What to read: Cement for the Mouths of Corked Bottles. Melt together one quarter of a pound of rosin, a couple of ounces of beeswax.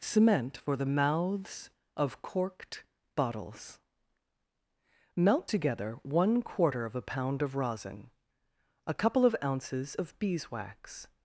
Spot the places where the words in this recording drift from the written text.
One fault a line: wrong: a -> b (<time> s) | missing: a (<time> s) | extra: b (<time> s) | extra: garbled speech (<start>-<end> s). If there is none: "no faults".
no faults